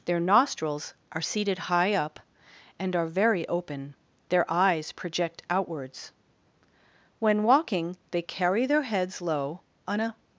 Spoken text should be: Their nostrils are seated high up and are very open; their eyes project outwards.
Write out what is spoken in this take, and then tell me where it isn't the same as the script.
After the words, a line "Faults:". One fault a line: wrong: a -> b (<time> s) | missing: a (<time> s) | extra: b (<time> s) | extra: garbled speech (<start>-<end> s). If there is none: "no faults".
Their nostrils are seated high up and are very open; their eyes project outwards. When walking they carry their heads low, on a
Faults:
extra: When walking they carry their heads low on a (7.2 s)